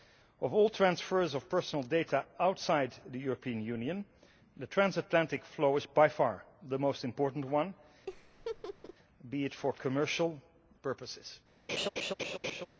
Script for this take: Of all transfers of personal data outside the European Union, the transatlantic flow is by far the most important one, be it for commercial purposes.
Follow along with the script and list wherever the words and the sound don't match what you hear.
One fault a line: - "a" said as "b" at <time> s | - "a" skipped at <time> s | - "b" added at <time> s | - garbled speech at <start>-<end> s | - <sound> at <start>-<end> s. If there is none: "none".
- laugh at 8.1-8.9 s
- laugh at 11.7-12.7 s